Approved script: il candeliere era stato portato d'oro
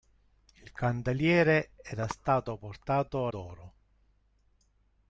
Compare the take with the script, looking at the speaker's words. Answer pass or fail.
pass